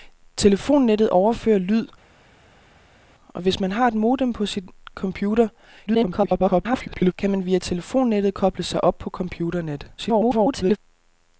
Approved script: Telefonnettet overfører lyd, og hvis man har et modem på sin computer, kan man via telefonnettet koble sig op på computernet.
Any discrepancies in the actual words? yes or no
yes